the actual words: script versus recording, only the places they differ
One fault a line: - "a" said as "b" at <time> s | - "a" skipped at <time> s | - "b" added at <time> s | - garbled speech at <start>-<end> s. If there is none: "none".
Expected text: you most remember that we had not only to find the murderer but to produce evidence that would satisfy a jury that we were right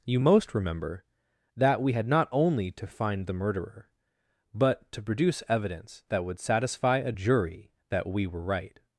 none